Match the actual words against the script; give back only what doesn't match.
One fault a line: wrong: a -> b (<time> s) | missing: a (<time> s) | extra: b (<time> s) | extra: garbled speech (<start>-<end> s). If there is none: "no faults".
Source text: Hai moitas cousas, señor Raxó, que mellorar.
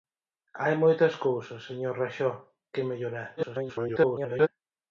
extra: garbled speech (3.4-4.5 s)